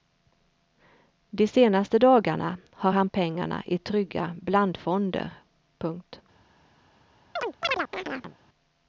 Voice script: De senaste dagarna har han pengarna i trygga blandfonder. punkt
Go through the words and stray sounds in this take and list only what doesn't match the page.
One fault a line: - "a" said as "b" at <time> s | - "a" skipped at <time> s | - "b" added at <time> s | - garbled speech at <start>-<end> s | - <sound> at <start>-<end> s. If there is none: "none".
- chirp at 7.4-8.4 s